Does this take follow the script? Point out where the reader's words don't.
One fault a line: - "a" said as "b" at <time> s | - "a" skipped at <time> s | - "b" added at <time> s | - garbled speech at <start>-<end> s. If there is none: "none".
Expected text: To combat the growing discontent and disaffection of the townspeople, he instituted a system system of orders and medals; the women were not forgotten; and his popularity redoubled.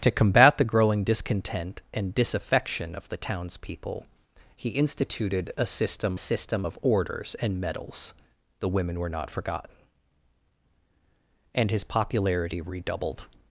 none